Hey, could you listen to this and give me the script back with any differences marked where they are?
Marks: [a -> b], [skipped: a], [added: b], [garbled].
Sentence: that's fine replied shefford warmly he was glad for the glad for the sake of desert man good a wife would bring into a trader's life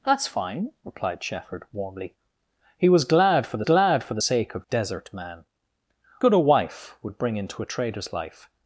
that's fine replied shefford warmly he was glad for the glad for the sake of desert man good a wife would bring into a trader's life